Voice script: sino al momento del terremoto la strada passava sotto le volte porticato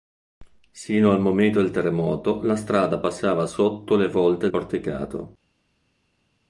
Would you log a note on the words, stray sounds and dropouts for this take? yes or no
no